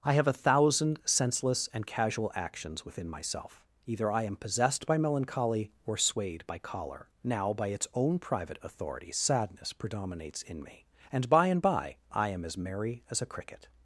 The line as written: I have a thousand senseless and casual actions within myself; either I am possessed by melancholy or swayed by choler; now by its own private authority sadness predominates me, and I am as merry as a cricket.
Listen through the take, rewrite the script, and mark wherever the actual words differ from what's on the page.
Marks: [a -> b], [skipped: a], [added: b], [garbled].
I have a thousand senseless and casual actions within myself; either I am possessed by melancholy or swayed by choler; now by its own private authority sadness predominates [added: in] me, and [added: by and by] I am as merry as a cricket.